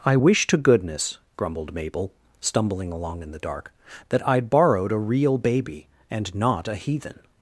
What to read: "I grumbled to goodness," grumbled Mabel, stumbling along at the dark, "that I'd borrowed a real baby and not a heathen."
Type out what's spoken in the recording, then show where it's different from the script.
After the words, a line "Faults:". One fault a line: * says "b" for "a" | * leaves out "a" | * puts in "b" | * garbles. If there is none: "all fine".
"I wish to goodness," grumbled Mabel, stumbling along in the dark, "that I'd borrowed a real baby and not a heathen."
Faults:
* says "wish" for "grumbled"
* says "in" for "at"